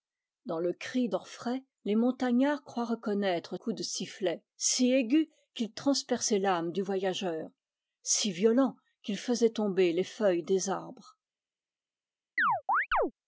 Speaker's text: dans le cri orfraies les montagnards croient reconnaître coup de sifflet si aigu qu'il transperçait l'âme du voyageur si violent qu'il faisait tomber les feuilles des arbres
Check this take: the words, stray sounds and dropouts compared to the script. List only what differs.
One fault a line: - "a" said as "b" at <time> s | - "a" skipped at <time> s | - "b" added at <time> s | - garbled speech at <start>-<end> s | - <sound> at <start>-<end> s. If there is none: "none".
- chirp at 12.4-13.1 s